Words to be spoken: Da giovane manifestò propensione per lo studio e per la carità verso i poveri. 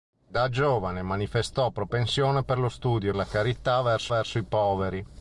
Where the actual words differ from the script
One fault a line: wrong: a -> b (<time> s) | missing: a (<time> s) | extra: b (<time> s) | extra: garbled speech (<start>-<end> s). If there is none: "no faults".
missing: per (3.1 s)
extra: verso (4.1 s)